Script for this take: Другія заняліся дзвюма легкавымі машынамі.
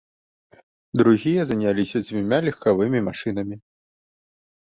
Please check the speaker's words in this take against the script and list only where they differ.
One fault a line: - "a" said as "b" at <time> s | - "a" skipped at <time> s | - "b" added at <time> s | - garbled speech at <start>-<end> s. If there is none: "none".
none